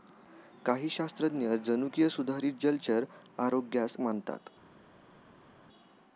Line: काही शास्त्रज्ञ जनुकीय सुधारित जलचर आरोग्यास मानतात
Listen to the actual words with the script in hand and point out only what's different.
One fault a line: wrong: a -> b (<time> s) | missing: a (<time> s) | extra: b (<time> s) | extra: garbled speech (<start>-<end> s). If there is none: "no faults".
no faults